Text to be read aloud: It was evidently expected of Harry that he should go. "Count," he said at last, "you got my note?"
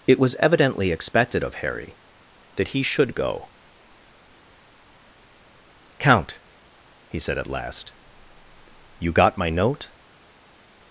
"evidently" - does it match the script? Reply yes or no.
yes